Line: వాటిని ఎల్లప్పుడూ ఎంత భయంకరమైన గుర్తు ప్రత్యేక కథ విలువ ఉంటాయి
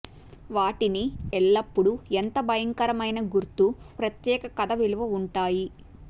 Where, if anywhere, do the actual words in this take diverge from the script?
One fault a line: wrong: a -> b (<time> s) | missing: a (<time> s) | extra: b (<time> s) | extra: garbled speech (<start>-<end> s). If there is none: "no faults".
no faults